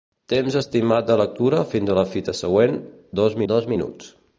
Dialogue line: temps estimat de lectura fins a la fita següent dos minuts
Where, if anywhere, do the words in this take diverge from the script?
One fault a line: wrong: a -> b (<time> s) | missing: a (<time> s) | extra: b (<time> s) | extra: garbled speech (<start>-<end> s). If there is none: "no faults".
extra: dos (3.5 s)